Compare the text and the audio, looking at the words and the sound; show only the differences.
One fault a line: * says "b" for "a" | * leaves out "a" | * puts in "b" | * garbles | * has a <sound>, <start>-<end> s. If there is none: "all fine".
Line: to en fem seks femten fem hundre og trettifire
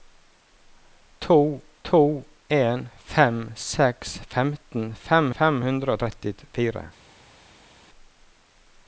* puts in "to"
* puts in "fem"